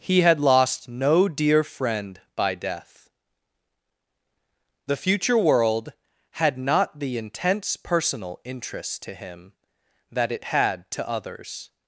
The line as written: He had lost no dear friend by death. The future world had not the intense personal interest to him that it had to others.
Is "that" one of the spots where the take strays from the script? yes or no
no